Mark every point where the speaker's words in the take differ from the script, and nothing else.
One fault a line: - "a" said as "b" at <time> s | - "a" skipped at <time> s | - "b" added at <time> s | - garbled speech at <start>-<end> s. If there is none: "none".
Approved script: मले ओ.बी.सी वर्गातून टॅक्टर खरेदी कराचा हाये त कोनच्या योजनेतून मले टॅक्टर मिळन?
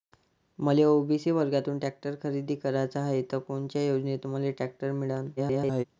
- garbled speech at 5.4-5.8 s